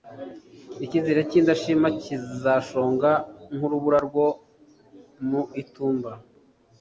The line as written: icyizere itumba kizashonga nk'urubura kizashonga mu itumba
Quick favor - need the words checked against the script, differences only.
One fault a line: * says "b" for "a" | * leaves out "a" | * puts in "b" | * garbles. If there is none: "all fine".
* says "cy'indashima" for "itumba"
* says "rwo" for "kizashonga"